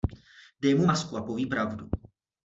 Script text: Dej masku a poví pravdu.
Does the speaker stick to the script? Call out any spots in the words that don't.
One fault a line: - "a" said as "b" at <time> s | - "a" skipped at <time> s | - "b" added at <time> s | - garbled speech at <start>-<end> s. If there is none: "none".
- "mu" added at 0.8 s